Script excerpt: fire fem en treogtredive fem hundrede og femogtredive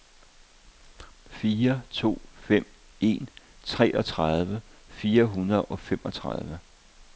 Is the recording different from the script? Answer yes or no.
yes